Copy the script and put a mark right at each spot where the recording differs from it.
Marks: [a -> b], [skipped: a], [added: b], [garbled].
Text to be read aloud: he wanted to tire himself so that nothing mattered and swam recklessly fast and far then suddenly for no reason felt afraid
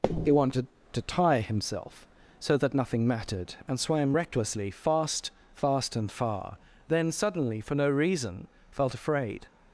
he wanted to tire himself so that nothing mattered and swam recklessly fast [added: fast] and far then suddenly for no reason felt afraid